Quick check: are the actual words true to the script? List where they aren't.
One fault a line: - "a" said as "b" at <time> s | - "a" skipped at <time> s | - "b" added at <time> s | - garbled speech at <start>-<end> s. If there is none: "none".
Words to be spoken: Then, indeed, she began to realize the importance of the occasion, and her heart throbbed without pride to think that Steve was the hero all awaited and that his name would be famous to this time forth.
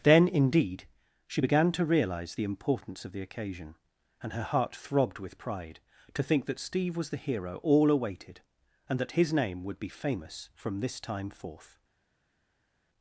- "without" said as "with" at 5.2 s
- "to" said as "from" at 10.5 s